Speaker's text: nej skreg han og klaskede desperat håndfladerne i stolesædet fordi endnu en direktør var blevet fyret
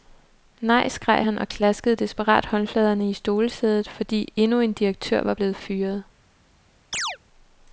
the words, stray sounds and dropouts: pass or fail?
fail